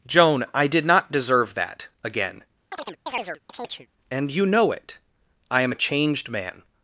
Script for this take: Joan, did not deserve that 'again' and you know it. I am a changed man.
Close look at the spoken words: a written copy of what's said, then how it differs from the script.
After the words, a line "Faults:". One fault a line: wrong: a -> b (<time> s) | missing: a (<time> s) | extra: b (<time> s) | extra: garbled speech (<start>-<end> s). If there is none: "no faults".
Joan, I did not deserve that 'again' and you know it. I am a changed man.
Faults:
extra: I (0.5 s)